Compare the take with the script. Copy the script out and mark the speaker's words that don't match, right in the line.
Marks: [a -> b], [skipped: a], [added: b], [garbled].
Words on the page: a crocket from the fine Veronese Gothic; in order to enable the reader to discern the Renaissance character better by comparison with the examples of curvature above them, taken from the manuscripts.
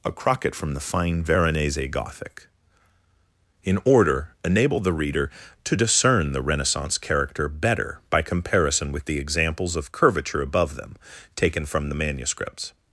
a crocket from the fine Veronese Gothic; in order [skipped: to] enable the reader to discern the Renaissance character better by comparison with the examples of curvature above them, taken from the manuscripts.